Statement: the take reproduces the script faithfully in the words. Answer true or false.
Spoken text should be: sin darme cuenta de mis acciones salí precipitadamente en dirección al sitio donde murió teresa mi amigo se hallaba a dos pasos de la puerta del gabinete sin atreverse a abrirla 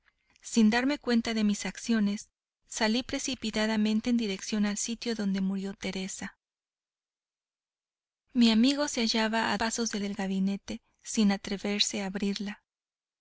false